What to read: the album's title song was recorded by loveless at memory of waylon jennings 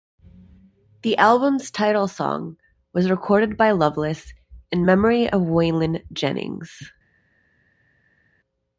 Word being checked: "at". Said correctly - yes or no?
no